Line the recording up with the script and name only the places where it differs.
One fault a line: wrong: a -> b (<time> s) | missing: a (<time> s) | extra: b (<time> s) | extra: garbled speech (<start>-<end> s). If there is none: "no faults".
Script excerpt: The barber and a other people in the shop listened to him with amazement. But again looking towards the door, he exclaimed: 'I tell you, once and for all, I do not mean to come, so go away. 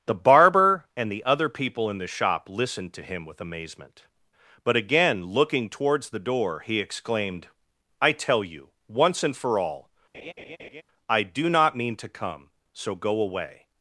wrong: a -> the (1.1 s)